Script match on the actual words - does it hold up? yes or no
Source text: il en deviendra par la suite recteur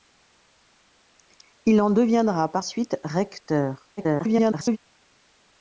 no